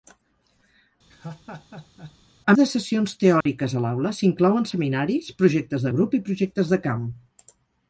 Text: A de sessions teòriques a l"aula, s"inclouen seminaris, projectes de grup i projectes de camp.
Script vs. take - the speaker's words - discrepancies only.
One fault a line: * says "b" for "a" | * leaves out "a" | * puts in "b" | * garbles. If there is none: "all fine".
all fine